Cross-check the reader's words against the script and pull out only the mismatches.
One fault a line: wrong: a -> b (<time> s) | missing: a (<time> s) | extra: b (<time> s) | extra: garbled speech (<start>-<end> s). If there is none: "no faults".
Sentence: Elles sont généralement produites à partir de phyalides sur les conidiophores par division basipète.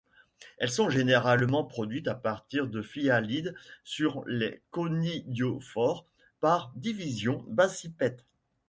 no faults